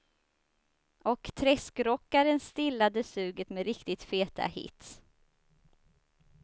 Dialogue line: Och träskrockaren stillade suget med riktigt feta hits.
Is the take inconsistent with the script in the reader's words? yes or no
no